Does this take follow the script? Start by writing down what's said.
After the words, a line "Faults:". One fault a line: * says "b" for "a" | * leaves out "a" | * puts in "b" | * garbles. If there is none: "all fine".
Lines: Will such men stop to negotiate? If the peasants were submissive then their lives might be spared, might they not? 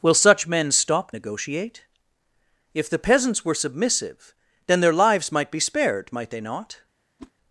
Will such men stop negotiate? If the peasants were submissive then their lives might be spared, might they not?
Faults:
* leaves out "to"